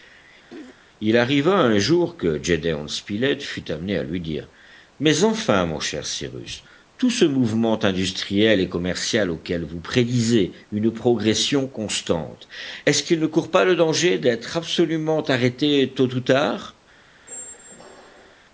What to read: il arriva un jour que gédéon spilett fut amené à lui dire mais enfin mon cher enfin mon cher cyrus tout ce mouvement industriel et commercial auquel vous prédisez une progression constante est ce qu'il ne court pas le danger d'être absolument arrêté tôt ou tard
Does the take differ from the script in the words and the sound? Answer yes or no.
yes